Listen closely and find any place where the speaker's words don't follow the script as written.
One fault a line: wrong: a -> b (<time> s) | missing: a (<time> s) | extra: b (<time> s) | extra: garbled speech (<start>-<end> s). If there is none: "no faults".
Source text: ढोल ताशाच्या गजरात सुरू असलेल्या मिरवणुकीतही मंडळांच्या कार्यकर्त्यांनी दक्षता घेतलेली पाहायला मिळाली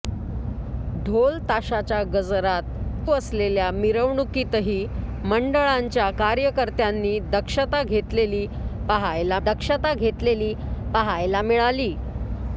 missing: सुरू (3.1 s)
extra: दक्षता घेतलेली पाहायला (9.4 s)